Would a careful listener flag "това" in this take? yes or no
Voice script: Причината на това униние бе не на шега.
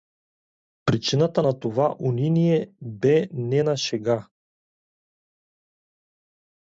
no